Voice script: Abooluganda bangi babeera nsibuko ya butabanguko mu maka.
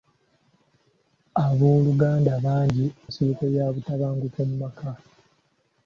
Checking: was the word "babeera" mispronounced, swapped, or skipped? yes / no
yes